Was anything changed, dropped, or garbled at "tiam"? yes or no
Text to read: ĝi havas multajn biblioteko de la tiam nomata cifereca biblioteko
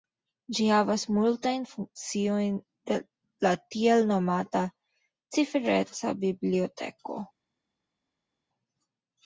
yes